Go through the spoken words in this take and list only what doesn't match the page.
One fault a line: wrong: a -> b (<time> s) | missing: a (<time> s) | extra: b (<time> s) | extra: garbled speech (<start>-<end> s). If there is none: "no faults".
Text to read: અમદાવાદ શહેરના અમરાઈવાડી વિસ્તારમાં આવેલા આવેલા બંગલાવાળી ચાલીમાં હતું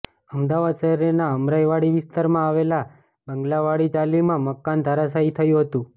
missing: આવેલા (2.8 s)
extra: મકાન ધરાશાયી થયું (4.5 s)